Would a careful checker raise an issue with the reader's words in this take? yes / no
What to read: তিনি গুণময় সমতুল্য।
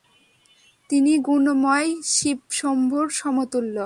yes